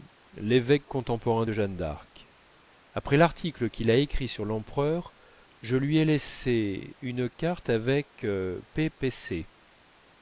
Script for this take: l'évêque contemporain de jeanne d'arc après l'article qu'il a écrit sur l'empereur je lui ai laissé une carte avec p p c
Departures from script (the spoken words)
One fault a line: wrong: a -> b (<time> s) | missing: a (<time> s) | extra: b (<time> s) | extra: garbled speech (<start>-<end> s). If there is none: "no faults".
no faults